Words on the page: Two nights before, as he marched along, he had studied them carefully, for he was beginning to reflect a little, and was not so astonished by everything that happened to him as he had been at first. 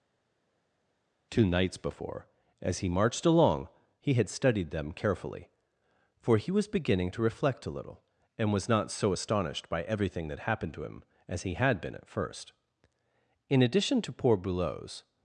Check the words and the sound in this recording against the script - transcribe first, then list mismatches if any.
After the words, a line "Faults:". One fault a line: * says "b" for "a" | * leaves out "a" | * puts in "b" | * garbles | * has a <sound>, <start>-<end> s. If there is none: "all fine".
Two nights before, as he marched along, he had studied them carefully, for he was beginning to reflect a little, and was not so astonished by everything that happened to him as he had been at first. In addition to poor Boulot's
Faults:
* puts in "In addition to poor Boulot's"